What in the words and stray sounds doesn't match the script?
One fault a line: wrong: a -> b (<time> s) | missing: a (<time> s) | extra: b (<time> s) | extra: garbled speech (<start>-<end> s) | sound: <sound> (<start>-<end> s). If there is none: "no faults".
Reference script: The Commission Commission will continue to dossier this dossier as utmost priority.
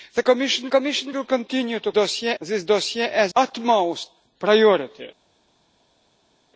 no faults